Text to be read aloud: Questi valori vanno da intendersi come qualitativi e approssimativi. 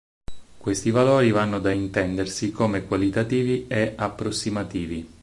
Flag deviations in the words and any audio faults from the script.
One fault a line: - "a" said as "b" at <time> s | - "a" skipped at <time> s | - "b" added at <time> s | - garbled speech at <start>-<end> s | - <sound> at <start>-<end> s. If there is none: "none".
none